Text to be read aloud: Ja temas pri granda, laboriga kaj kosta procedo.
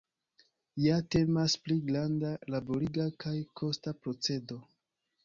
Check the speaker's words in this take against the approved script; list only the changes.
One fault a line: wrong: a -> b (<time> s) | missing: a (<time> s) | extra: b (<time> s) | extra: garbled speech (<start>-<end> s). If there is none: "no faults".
no faults